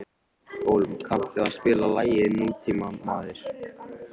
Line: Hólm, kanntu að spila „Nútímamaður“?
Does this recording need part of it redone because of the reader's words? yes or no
yes